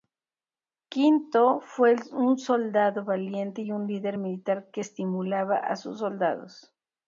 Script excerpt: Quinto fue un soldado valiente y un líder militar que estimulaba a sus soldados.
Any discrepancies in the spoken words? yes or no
no